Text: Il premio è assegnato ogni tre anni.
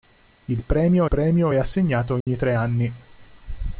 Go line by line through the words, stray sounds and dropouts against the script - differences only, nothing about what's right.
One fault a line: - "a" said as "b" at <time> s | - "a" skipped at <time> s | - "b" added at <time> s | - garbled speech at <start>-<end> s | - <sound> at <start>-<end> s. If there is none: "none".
- "premio" added at 1.0 s
- dropout at 2.2-2.3 s